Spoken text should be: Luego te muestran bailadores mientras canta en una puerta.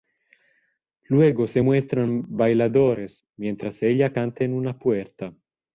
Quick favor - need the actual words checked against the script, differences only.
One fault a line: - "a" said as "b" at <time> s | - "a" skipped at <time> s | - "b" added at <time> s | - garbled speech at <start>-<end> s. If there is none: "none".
- "te" said as "se" at 1.5 s
- "ella" added at 3.8 s